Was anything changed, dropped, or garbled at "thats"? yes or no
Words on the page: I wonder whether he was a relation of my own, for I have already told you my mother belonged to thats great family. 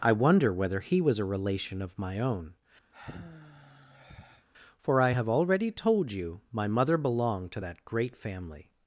yes